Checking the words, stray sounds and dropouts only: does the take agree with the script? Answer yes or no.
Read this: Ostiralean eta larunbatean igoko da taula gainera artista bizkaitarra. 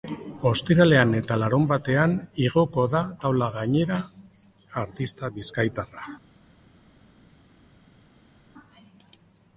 yes